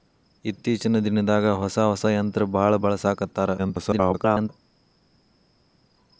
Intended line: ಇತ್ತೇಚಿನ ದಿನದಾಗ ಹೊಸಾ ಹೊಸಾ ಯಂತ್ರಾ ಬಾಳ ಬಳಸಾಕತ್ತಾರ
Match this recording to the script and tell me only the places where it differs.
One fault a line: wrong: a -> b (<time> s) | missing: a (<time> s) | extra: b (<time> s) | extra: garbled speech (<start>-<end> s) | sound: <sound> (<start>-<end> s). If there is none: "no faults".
extra: garbled speech (3.6-4.5 s)